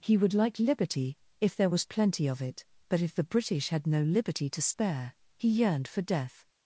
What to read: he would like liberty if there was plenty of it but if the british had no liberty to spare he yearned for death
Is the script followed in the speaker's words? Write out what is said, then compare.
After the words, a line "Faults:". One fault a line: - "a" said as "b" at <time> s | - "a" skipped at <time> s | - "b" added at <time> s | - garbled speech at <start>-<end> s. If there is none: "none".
he would like liberty if there was plenty of it but if the british had no liberty to spare he yearned for death
Faults:
none